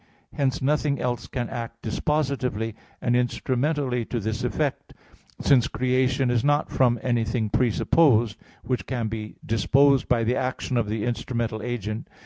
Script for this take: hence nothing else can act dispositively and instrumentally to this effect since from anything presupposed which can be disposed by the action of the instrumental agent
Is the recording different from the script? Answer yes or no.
yes